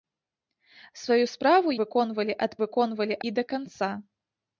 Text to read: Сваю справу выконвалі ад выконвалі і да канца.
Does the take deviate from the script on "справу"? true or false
false